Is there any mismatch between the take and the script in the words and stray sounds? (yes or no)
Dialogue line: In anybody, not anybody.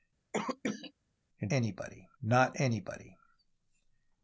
yes